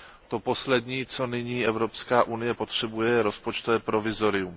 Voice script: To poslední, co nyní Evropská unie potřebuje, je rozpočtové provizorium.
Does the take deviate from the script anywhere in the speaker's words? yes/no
no